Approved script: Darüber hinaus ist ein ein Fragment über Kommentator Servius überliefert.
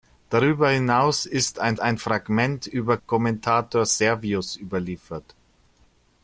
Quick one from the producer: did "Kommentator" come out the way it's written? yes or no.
yes